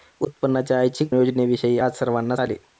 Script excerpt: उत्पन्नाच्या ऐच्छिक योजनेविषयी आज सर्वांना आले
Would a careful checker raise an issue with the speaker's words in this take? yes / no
no